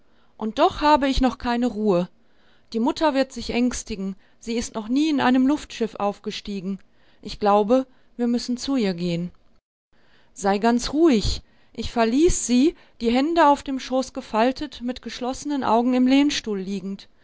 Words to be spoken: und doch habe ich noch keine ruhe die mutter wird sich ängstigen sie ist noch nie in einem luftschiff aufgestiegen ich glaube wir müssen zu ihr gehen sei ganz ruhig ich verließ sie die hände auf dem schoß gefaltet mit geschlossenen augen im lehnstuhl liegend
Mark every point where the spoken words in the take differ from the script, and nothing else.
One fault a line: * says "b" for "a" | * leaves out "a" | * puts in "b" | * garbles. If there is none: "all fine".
all fine